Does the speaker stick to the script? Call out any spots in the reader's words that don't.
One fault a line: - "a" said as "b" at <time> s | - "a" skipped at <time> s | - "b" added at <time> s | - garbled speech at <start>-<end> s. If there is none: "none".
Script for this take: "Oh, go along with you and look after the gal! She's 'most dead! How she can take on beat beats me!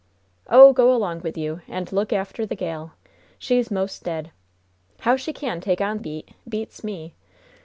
none